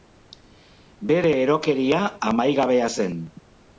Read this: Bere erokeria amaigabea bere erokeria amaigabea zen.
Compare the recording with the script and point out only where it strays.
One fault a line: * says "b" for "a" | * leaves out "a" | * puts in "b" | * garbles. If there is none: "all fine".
* leaves out "bere erokeria amaigabea"